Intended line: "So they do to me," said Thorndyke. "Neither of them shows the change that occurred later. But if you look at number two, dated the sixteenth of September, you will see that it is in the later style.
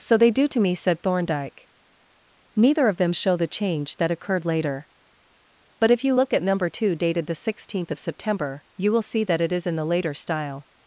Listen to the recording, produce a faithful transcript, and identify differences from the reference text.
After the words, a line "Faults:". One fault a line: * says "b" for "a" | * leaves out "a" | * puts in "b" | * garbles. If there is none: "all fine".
"So they do to me," said Thorndyke. "Neither of them show the change that occurred later. But if you look at number two, dated the sixteenth of September, you will see that it is in the later style.
Faults:
* says "show" for "shows"